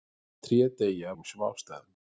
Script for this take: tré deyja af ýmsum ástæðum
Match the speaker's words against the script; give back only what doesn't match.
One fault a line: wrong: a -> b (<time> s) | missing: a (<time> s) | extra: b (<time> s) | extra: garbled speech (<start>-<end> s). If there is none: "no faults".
missing: af (1.1 s)